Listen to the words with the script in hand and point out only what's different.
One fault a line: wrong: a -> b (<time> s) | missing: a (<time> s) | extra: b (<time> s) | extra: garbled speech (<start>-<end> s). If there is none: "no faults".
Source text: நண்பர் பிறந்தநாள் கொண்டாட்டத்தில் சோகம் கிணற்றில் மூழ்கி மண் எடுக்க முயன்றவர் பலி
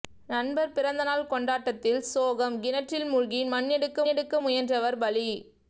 extra: எடுக்க (4.0 s)